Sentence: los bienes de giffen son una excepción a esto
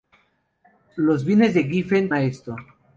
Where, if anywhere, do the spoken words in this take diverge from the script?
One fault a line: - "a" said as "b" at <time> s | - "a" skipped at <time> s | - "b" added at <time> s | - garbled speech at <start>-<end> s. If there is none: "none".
- "son una excepción" skipped at 2.1 s